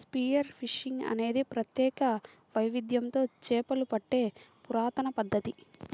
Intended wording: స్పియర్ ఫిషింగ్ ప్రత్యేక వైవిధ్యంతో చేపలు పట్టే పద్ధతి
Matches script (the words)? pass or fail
fail